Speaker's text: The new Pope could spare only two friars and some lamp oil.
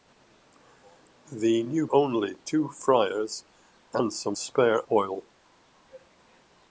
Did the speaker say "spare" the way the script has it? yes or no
no